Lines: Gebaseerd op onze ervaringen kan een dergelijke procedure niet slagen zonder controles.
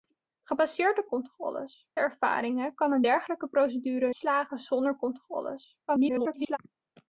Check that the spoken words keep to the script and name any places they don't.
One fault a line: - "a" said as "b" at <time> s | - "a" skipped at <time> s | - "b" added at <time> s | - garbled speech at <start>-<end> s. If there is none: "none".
- "onze" said as "controles" at 1.1 s
- "niet" skipped at 4.1 s
- garbled speech at 5.9-6.6 s